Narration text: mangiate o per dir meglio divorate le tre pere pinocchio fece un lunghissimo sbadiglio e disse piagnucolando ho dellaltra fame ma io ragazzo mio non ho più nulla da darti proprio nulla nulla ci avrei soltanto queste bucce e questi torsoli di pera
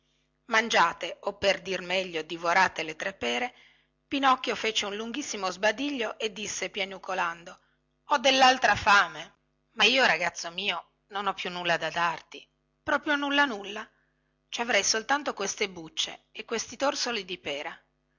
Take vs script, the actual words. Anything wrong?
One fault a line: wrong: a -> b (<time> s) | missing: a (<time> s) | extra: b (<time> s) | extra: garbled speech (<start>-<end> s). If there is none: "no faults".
no faults